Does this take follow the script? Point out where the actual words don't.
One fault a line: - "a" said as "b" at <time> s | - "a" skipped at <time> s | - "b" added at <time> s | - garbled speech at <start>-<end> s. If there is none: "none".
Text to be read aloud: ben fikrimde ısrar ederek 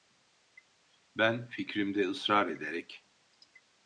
none